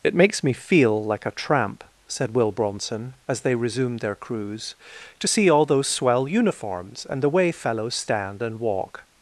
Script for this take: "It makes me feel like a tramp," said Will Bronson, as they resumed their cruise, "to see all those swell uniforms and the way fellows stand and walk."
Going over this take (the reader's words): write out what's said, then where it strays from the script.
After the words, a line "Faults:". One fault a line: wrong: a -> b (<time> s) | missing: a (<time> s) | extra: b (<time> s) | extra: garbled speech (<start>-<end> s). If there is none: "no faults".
"It makes me feel like a tramp," said Will Bronson, as they resumed their cruise, "to see all those swell uniforms and the way fellows stand and walk."
Faults:
no faults